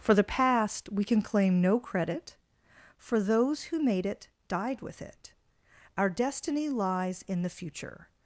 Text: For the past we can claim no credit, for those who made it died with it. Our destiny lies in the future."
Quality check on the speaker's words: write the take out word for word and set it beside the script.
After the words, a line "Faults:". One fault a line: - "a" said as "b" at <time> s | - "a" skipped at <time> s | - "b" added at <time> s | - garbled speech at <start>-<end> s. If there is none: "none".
For the past we can claim no credit, for those who made it died with it. Our destiny lies in the future."
Faults:
none